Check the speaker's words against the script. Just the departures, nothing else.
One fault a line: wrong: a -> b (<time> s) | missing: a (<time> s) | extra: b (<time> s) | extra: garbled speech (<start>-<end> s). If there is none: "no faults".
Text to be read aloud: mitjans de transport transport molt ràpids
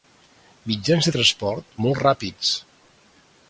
missing: transport (1.7 s)